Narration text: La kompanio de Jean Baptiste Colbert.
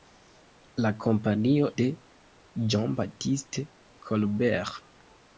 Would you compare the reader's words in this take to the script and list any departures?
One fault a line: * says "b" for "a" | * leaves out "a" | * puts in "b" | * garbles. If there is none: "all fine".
all fine